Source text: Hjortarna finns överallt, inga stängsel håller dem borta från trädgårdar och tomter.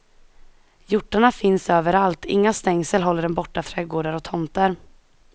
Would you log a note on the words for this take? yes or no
yes